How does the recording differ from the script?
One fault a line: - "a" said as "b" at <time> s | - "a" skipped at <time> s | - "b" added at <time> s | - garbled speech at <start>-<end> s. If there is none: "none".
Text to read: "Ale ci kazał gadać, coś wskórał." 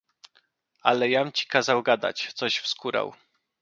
- "jam" added at 1.1 s